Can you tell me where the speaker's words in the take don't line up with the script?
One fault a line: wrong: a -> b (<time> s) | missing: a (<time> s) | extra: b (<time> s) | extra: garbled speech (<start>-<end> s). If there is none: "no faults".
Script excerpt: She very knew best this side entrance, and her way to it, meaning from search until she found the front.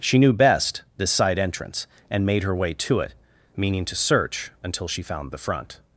missing: very (0.2 s)
extra: made (2.2 s)
wrong: from -> to (3.8 s)